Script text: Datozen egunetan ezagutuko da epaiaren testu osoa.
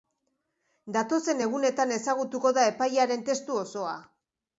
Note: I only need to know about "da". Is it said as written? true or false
true